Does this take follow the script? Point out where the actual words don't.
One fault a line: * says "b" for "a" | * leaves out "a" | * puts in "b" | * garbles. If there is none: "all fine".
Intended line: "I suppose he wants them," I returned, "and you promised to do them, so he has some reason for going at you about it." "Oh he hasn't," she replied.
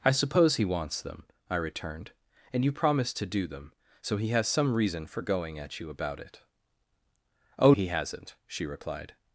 all fine